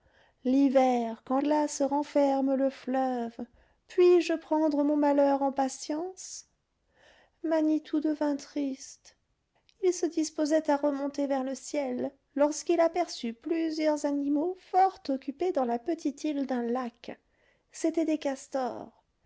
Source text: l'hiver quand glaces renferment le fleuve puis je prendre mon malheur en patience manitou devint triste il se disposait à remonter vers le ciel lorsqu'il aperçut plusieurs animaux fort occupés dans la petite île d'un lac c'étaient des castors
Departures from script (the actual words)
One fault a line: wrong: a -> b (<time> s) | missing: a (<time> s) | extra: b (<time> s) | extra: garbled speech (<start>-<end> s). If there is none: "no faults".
no faults